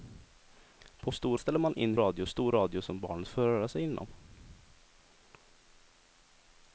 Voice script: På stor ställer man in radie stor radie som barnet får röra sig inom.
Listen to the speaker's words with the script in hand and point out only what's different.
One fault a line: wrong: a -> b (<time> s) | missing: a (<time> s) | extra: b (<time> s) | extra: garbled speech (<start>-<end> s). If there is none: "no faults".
no faults